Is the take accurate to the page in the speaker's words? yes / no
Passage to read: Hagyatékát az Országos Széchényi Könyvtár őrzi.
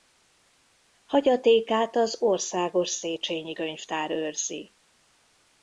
yes